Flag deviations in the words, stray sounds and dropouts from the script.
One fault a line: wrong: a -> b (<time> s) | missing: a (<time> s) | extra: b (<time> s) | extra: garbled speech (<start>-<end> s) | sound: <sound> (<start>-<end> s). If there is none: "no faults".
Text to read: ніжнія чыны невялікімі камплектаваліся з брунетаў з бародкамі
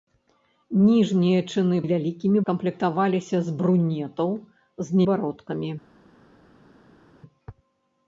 no faults